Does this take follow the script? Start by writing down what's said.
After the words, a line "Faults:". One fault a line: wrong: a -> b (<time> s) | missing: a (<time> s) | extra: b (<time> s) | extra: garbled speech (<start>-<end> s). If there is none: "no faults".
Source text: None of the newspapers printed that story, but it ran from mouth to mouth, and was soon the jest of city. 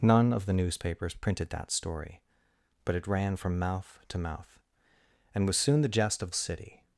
None of the newspapers printed that story, but it ran from mouth to mouth, and was soon the jest of city.
Faults:
no faults